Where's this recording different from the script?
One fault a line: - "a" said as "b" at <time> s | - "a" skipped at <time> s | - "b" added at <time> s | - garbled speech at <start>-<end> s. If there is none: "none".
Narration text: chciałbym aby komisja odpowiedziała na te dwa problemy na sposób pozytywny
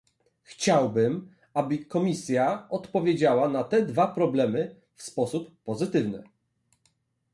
- "na" said as "w" at 4.9 s